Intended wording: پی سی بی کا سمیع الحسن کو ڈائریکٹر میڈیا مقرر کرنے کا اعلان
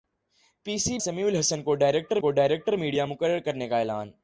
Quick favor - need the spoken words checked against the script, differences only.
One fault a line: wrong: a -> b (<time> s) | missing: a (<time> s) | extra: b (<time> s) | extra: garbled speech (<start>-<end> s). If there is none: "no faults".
wrong: بی کا سمیع الحسن -> سمیع الحسن کو ڈائریکٹر (1.0 s)